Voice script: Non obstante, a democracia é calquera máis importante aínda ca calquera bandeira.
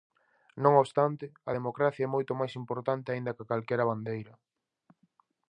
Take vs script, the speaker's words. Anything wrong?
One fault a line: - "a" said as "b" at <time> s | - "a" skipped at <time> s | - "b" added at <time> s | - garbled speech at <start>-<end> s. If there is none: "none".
- "calquera" said as "moito" at 2.1 s